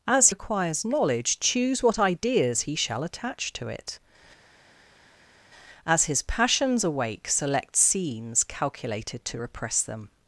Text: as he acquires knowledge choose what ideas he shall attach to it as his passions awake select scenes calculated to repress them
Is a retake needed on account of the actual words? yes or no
yes